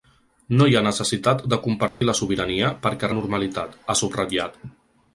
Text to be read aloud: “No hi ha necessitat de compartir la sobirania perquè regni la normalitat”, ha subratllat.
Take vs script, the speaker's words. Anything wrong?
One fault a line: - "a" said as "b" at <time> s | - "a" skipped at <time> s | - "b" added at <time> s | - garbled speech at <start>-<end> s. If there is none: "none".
- "regni" skipped at 3.1 s